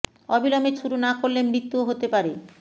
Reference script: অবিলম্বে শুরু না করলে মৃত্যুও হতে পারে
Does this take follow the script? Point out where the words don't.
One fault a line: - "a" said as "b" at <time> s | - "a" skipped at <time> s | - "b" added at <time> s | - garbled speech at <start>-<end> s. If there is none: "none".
none